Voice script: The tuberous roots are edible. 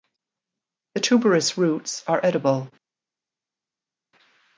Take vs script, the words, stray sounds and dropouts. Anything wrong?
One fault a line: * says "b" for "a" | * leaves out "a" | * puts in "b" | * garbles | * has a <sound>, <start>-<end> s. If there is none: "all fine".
all fine